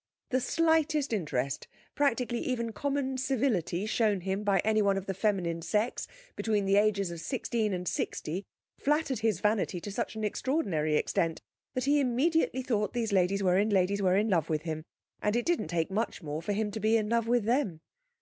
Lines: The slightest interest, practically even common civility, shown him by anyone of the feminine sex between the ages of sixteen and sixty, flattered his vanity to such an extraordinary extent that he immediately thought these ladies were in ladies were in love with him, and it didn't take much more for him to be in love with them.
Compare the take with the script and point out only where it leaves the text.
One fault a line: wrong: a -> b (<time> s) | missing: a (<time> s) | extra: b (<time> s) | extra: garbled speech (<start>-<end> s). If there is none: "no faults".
no faults